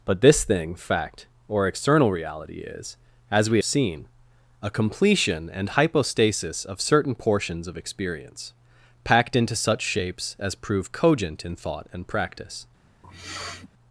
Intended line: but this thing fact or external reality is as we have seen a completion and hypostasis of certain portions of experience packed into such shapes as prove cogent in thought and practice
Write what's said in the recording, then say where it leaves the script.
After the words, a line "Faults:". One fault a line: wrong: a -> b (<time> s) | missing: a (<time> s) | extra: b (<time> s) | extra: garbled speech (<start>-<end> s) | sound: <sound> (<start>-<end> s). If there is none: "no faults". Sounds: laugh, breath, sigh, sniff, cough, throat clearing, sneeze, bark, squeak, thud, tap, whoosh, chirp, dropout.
but this thing fact or external reality is as we seen a completion and hypostasis of certain portions of experience packed into such shapes as prove cogent in thought and practice
Faults:
missing: have (3.6 s)
sound: sniff (13.0-13.7 s)